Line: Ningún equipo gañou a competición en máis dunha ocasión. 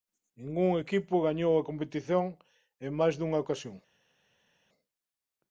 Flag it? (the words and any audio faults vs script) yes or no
no